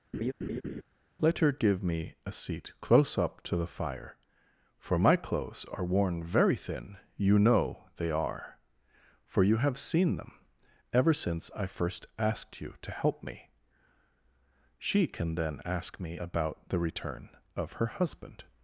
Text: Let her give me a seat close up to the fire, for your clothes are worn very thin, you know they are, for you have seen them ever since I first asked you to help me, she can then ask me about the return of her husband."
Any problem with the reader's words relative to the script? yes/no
yes